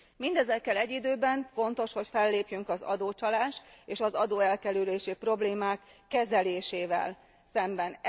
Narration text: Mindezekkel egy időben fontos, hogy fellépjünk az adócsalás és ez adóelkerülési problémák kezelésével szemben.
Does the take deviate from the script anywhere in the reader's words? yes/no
yes